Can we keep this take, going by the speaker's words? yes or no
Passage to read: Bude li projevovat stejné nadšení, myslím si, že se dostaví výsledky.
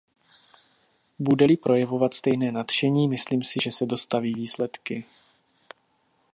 yes